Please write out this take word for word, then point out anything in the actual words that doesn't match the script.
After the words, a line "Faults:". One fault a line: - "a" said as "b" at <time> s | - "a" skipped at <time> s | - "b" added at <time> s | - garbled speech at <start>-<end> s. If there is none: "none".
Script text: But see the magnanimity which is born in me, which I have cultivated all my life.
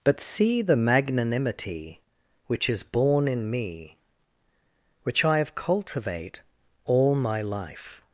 But see the magnanimity which is born in me, which I have cultivate all my life.
Faults:
- "cultivated" said as "cultivate" at 5.6 s